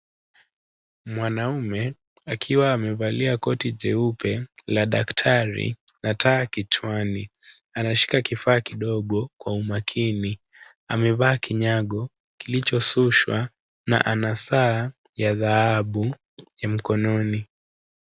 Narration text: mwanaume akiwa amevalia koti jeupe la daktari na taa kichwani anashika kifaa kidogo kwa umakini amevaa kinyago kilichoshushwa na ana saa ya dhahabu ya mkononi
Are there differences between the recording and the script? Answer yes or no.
no